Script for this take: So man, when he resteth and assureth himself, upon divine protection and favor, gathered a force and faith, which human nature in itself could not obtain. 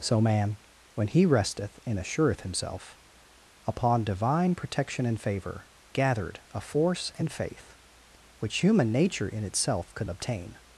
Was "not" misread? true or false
true